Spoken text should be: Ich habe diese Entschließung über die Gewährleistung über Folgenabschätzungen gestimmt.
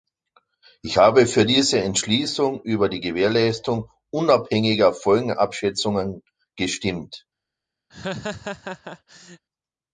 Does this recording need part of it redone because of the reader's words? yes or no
yes